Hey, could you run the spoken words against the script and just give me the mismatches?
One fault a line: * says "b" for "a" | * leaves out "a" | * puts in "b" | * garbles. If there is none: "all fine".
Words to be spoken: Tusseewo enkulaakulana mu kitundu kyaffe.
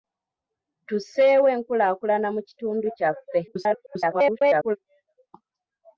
* garbles